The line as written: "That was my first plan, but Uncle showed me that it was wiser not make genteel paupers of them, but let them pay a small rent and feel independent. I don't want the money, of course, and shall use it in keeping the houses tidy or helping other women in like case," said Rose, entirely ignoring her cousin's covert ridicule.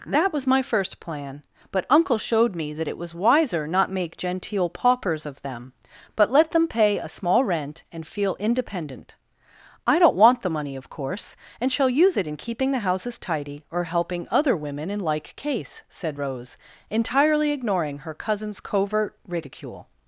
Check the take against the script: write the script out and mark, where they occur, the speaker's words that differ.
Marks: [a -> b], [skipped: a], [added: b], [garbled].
"That was my first plan, but Uncle showed me that it was wiser not make genteel paupers of them, but let them pay a small rent and feel independent. I don't want the money, of course, and shall use it in keeping the houses tidy or helping other women in like case," said Rose, entirely ignoring her cousin's covert ridicule.